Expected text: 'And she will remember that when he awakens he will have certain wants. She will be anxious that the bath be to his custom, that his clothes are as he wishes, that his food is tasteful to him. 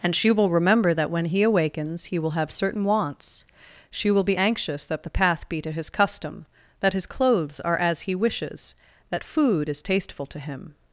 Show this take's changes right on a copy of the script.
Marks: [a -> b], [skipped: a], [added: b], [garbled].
'And she will remember that when he awakens he will have certain wants. She will be anxious that the [bath -> path] be to his custom, that his clothes are as he wishes, that [skipped: his] food is tasteful to him.